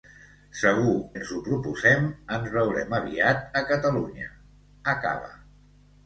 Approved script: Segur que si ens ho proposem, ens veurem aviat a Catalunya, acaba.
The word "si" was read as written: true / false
false